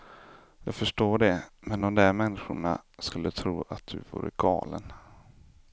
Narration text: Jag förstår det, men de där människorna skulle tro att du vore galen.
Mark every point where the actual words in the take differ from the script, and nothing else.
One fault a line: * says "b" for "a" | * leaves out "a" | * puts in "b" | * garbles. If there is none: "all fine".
all fine